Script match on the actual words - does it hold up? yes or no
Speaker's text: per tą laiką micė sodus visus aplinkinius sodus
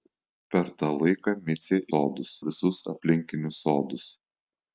yes